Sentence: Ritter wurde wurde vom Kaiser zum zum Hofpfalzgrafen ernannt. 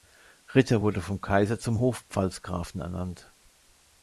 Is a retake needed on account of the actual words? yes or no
yes